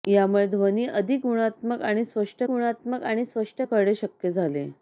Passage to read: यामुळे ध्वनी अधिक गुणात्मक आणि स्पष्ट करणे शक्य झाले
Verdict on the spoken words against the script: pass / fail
fail